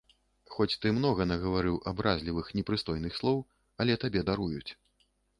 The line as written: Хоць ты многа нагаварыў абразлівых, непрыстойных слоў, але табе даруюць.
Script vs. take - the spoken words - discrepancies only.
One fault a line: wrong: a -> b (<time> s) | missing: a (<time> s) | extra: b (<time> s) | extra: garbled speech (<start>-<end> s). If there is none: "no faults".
no faults